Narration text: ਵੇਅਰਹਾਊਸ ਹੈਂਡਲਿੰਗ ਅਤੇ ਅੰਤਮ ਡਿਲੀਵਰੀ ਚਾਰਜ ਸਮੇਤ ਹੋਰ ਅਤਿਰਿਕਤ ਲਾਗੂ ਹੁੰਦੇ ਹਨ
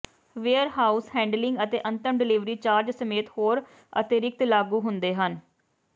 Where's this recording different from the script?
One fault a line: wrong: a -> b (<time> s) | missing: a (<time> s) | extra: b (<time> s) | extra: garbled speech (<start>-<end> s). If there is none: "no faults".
no faults